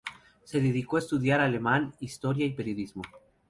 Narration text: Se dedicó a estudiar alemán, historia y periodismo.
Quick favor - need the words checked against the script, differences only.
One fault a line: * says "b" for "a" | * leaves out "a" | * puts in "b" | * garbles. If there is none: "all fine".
all fine